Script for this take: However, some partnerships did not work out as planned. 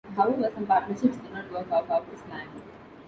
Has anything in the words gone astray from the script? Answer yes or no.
yes